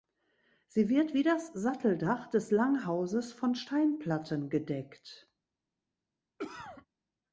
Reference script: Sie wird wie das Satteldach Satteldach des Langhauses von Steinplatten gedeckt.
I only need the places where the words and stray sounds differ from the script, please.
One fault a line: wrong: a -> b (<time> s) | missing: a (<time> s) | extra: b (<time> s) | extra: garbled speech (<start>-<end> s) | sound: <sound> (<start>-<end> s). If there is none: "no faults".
missing: Satteldach (2.3 s)
sound: cough (6.4-6.9 s)